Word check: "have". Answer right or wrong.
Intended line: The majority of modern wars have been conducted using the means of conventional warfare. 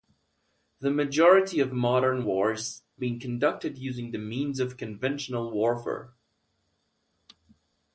wrong